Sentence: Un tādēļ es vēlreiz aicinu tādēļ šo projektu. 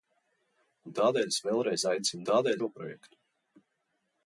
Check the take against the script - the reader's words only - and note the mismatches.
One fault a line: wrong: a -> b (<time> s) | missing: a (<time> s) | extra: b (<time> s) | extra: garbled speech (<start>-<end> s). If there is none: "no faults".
no faults